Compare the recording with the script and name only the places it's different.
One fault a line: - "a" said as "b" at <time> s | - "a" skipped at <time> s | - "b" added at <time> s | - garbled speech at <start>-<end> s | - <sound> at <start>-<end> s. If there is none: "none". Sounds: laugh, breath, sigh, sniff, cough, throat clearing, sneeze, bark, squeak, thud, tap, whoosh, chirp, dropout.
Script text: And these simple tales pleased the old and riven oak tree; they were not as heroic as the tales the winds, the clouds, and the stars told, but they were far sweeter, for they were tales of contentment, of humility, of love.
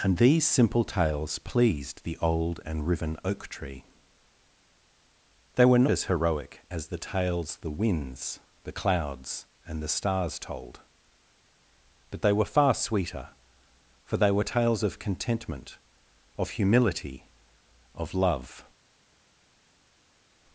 - "not" skipped at 5.8 s